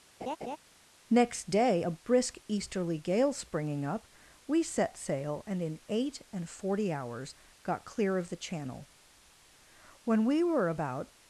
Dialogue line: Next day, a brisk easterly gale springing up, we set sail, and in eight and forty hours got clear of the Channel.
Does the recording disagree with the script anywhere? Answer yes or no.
yes